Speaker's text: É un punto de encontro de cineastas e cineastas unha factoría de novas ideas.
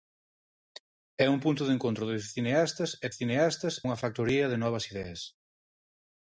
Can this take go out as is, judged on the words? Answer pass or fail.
pass